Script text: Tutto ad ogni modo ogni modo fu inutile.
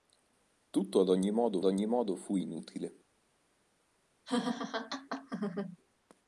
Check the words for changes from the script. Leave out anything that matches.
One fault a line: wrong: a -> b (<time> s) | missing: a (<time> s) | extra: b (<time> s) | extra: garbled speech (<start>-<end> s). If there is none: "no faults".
no faults